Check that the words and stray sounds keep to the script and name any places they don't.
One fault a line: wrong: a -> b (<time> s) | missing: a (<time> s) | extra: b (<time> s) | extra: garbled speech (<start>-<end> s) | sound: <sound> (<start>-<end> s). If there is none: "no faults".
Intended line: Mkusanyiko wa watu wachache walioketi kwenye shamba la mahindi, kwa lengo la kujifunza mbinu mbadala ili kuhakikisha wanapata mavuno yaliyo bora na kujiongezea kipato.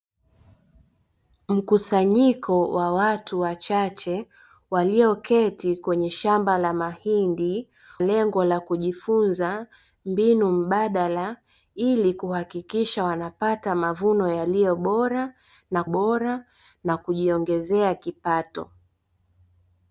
missing: kwa (7.7 s)
extra: bora na (15.8 s)